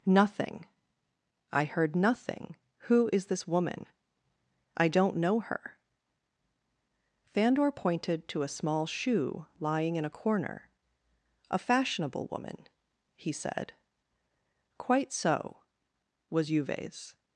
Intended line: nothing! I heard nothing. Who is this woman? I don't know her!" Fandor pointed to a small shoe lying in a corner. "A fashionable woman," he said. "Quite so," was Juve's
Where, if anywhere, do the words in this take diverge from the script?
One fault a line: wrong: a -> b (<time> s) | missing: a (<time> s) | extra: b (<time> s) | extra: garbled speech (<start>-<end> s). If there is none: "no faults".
no faults